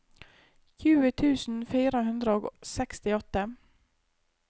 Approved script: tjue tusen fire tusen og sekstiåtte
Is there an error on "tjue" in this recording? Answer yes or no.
no